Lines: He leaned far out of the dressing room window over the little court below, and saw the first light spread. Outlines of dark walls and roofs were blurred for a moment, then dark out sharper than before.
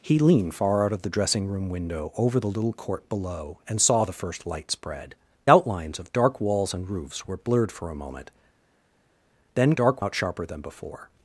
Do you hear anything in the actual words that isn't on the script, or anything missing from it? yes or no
no